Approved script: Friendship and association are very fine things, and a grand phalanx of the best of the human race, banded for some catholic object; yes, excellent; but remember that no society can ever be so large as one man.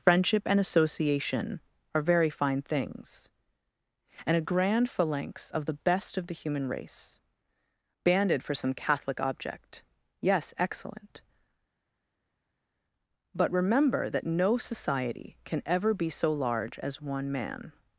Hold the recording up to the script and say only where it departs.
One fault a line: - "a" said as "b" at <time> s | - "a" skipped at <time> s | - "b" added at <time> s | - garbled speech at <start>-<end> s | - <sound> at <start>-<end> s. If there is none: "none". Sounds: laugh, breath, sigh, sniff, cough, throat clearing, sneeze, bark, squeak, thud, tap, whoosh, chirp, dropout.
none